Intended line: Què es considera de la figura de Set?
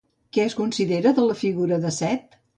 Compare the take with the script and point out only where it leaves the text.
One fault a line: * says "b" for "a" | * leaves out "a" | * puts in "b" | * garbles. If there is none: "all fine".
all fine